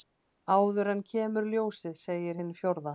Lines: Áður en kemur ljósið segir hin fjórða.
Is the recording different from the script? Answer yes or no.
no